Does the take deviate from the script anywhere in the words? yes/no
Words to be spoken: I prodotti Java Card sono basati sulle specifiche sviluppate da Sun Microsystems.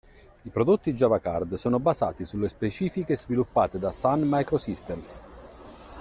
no